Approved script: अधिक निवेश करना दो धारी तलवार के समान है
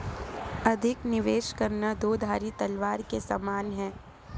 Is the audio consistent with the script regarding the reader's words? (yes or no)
yes